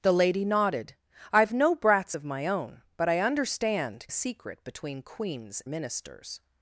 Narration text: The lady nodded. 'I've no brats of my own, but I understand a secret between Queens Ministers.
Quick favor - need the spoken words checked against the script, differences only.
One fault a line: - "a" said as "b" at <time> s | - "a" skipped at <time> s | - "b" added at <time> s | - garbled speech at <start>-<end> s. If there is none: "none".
none